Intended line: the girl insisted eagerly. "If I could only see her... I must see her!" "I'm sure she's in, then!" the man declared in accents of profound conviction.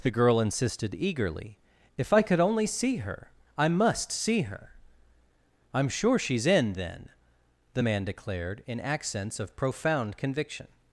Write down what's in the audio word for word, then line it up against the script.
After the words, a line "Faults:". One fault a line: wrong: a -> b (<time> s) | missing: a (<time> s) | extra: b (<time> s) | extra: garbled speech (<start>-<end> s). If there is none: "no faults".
the girl insisted eagerly. "If I could only see her... I must see her!" "I'm sure she's in, then!" the man declared in accents of profound conviction.
Faults:
no faults